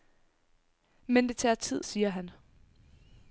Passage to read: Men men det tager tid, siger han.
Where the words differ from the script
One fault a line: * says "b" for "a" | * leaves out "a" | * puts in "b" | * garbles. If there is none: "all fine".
* leaves out "men"